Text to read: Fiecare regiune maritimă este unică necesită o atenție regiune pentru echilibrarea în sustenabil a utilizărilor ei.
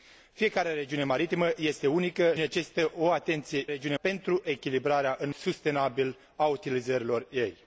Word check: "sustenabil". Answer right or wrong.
right